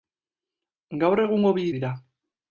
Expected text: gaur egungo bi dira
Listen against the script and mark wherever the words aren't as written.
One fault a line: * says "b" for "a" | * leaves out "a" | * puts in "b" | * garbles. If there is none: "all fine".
all fine